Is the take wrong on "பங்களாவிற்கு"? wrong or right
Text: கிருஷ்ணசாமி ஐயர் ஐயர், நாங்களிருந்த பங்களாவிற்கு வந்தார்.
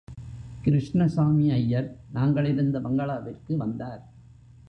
right